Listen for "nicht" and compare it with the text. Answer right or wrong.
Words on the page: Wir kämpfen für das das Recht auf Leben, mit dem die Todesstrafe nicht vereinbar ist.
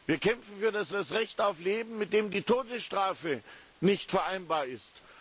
right